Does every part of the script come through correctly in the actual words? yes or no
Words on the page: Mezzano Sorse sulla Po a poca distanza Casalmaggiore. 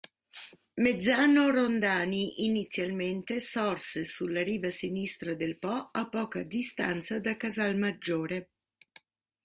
no